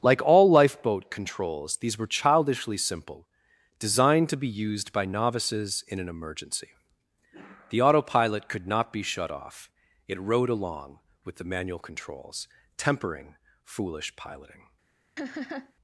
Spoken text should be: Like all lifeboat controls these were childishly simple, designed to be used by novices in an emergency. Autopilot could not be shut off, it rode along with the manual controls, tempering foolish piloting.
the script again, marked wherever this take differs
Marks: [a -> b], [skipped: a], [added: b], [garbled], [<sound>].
Like all lifeboat controls these were childishly simple, designed to be used by novices in an emergency. [added: The] Autopilot could not be shut off, it rode along with the manual controls, tempering foolish piloting. [laugh]